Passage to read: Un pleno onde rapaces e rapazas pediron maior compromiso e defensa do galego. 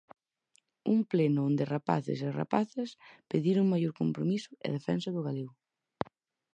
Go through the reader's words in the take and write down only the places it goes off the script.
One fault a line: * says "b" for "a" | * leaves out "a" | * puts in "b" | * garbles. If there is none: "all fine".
all fine